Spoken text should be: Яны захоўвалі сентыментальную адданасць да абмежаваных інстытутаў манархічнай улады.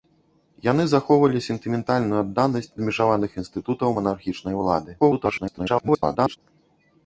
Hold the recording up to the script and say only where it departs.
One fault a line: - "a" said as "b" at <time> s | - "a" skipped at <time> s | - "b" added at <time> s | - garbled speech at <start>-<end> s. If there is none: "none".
- "да" skipped at 2.7 s
- garbled speech at 5.0-6.4 s